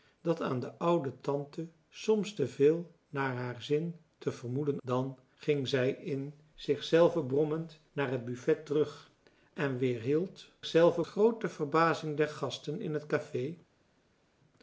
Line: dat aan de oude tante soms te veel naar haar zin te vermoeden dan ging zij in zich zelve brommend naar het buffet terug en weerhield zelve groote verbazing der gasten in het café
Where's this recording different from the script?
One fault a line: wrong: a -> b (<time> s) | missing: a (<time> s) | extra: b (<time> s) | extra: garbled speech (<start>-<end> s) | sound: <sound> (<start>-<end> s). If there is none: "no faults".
no faults